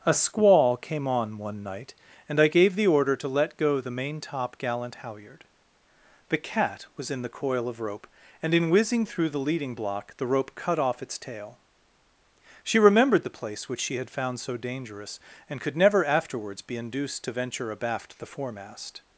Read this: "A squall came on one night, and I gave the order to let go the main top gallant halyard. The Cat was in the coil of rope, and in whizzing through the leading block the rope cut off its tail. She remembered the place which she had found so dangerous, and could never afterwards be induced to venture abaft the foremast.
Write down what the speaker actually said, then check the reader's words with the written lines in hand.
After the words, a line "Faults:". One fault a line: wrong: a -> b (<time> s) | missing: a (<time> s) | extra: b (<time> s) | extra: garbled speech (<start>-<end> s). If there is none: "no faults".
"A squall came on one night, and I gave the order to let go the main top gallant halyard. The Cat was in the coil of rope, and in whizzing through the leading block the rope cut off its tail. She remembered the place which she had found so dangerous, and could never afterwards be induced to venture abaft the foremast.
Faults:
no faults